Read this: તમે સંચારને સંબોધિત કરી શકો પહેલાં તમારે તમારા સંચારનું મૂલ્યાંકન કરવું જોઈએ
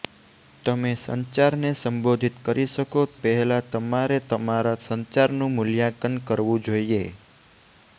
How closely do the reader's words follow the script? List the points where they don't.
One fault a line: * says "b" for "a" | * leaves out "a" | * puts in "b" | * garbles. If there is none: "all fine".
all fine